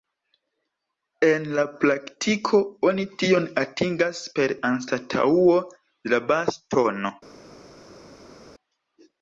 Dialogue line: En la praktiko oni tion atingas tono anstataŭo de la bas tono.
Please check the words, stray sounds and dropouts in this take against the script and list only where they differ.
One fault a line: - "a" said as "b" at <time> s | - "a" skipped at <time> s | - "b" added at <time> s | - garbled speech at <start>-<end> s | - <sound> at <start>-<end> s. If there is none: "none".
- "tono" said as "per" at 4.4 s